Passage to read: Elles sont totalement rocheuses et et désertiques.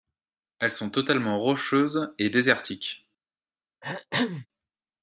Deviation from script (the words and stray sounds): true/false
true